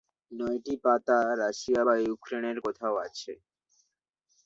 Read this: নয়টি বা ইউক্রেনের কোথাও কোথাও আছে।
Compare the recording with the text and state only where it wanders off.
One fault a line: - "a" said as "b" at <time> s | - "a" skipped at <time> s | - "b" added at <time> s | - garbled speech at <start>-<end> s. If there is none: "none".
- "পাতা রাশিয়া" added at 0.8 s
- "কোথাও" skipped at 2.9 s